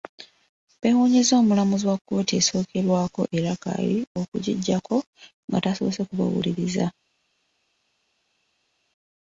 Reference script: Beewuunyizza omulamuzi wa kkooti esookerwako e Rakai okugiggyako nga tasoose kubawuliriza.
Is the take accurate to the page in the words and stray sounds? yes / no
yes